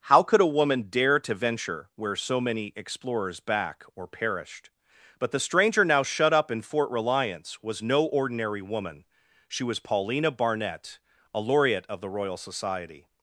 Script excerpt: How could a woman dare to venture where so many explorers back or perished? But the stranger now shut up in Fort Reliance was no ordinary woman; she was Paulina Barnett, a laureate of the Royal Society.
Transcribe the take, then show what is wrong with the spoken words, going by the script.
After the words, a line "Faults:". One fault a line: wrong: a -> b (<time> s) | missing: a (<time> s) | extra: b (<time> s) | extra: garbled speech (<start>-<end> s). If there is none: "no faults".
How could a woman dare to venture where so many explorers back or perished? But the stranger now shut up in Fort Reliance was no ordinary woman; she was Paulina Barnett, a laureate of the Royal Society.
Faults:
no faults